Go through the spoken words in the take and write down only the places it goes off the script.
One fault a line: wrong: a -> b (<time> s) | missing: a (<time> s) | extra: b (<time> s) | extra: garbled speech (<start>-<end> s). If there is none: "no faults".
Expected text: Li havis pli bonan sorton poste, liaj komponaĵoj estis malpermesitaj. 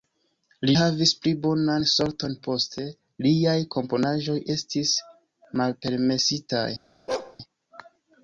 no faults